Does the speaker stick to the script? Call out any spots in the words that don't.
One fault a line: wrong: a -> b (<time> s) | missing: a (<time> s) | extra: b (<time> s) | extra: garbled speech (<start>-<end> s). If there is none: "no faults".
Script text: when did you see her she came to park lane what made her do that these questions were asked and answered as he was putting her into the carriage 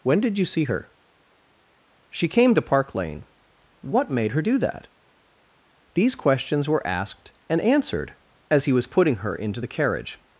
no faults